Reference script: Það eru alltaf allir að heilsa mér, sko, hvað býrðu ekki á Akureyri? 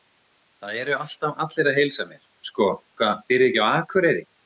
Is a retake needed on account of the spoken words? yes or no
no